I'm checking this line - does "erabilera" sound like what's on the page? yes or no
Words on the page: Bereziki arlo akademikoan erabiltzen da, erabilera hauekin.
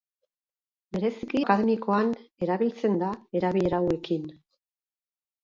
yes